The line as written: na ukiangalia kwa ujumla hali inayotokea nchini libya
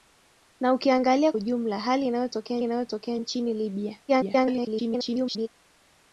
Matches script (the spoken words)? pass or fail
fail